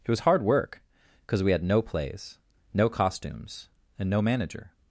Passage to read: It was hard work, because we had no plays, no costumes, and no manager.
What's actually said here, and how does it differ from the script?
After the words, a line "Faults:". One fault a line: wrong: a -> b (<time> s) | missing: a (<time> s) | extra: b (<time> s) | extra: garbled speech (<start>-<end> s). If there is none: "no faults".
It was hard work, because we had no plays, no costumes, and no manager.
Faults:
no faults